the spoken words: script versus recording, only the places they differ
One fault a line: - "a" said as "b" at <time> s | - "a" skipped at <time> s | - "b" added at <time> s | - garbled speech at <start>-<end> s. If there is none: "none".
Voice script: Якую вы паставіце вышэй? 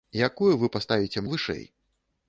none